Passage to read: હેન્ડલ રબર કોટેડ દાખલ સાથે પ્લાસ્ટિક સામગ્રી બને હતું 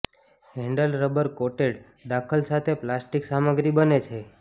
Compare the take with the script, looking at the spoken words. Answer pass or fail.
fail